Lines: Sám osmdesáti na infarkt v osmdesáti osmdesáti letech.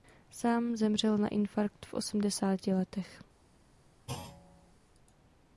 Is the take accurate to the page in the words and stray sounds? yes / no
no